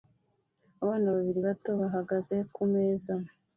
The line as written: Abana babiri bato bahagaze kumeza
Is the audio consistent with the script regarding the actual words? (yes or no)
yes